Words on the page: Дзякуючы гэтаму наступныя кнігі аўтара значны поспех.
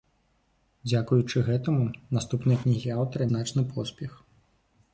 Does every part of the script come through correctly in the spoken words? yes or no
yes